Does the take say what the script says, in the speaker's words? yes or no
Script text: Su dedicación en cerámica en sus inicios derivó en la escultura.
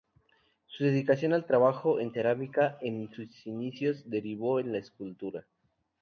no